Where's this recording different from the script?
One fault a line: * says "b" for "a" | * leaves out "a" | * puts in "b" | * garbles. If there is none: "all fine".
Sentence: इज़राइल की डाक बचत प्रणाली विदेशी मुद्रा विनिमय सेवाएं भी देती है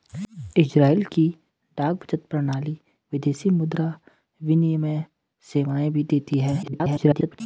* garbles